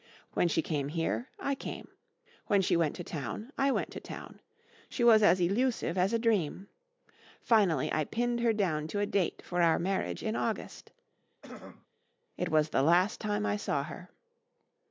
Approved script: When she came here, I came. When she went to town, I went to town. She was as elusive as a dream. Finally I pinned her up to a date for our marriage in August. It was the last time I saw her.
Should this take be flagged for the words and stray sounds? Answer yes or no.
yes